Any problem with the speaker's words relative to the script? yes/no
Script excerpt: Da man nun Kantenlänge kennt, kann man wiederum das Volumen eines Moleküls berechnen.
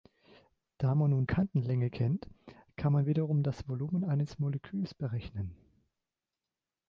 no